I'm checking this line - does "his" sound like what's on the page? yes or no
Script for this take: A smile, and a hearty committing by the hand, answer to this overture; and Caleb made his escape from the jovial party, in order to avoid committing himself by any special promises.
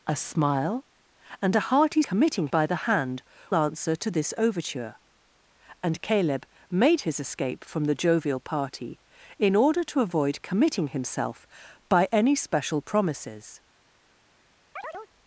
yes